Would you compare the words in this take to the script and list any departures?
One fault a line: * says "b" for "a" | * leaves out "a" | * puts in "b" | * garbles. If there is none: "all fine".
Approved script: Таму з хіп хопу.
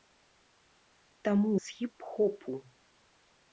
all fine